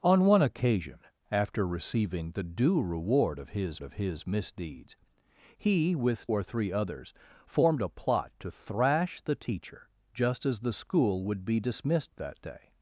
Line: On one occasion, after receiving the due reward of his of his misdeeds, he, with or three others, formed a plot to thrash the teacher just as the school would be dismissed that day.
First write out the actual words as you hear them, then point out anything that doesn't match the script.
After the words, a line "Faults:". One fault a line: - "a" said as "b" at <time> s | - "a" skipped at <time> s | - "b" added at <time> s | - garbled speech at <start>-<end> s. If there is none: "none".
On one occasion, after receiving the due reward of his of his misdeeds, he, with or three others, formed a plot to thrash the teacher just as the school would be dismissed that day.
Faults:
none